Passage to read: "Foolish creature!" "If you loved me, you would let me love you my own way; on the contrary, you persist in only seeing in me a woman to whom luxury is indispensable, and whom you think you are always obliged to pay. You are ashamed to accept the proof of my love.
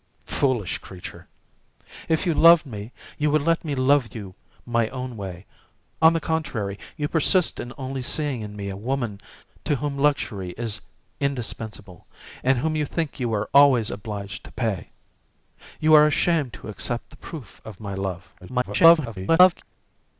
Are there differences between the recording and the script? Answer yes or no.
yes